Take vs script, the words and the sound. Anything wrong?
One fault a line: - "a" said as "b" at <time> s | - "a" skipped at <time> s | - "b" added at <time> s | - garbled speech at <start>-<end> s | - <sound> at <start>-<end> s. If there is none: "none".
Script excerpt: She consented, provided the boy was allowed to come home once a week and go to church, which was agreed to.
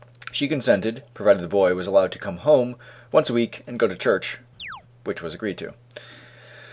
- chirp at 4.6-4.8 s